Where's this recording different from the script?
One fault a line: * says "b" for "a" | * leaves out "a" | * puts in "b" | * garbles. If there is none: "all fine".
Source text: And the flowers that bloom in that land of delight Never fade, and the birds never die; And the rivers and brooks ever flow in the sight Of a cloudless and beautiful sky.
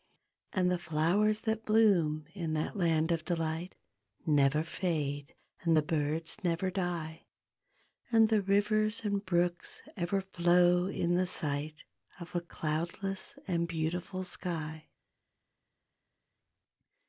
all fine